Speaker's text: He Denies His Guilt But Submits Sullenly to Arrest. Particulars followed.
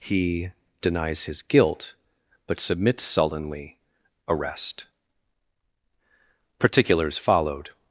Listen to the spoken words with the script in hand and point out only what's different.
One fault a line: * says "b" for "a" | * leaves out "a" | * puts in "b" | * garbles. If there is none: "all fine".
* leaves out "to"